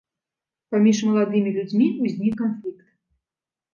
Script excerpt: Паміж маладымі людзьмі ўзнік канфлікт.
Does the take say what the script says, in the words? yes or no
yes